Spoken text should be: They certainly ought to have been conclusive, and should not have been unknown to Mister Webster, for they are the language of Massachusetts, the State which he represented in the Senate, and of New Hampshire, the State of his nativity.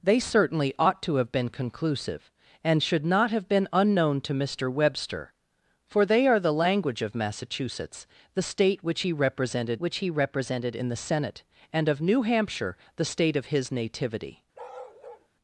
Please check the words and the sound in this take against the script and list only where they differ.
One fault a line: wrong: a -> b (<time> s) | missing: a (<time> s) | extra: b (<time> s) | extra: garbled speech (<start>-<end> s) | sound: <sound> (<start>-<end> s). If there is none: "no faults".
extra: which he represented (9.8 s)
sound: bark (14.5-15.3 s)